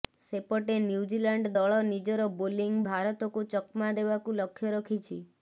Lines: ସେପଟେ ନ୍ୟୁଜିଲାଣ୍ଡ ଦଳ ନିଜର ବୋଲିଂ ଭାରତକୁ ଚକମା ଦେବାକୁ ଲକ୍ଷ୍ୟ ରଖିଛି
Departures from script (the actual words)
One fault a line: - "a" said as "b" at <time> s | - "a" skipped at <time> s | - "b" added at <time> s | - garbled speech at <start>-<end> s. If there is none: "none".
none